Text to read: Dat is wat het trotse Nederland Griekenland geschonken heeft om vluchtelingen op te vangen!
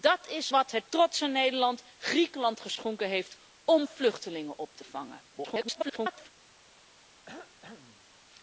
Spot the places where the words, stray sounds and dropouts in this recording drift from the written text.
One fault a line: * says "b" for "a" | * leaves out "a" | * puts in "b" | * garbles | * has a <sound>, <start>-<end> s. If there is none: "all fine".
* garbles
* has a cough, 7.3-8.1 s